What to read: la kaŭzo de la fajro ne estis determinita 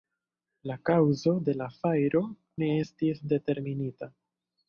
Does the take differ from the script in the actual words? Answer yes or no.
no